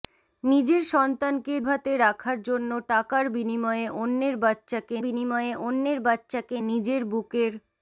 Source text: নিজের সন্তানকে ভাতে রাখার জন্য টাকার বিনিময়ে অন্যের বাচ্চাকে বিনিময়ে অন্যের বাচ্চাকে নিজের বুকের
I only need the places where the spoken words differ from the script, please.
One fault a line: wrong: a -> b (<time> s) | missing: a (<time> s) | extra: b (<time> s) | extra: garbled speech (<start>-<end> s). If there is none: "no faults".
no faults